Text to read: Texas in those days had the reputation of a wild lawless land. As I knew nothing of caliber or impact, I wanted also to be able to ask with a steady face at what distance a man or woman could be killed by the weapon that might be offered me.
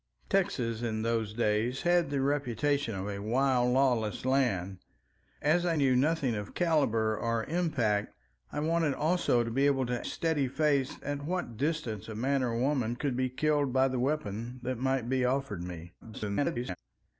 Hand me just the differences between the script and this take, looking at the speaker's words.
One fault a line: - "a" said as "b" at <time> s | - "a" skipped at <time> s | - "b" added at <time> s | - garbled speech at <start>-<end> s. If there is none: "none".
- "ask with a" skipped at 10.1 s
- garbled speech at 16.0-16.8 s